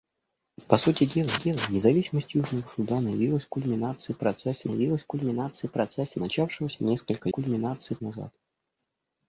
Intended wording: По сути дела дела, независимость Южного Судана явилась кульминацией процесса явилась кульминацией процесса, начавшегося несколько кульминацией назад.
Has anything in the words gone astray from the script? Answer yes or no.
no